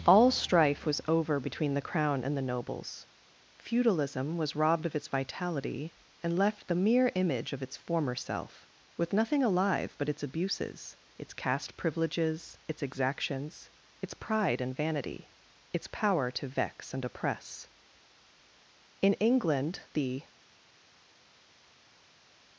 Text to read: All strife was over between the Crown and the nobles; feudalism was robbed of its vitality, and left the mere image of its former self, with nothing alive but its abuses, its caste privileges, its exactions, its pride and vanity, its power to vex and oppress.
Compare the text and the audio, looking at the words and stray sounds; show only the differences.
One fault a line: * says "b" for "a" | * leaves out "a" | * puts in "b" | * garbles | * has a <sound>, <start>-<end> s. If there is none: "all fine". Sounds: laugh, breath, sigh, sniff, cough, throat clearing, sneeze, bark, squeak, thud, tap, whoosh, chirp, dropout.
* puts in "In England the"